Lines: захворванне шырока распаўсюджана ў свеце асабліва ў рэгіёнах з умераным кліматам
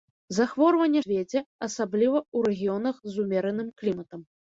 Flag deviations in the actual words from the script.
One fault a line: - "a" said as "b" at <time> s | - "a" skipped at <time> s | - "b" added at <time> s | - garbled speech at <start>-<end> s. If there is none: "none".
- "шырока распаўсюджана ў" skipped at 1.0 s